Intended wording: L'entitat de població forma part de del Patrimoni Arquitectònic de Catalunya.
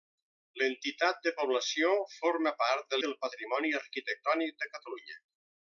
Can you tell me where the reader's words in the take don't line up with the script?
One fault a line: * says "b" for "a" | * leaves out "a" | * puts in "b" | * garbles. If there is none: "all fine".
all fine